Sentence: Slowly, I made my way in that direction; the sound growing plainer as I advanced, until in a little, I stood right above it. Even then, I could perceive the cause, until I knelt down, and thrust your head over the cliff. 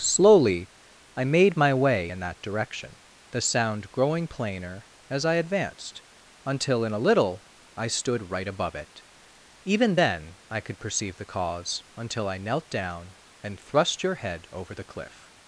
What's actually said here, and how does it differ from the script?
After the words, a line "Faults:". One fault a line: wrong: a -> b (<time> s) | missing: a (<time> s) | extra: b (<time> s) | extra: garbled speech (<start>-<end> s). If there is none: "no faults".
Slowly, I made my way in that direction; the sound growing plainer as I advanced, until in a little, I stood right above it. Even then, I could perceive the cause, until I knelt down, and thrust your head over the cliff.
Faults:
no faults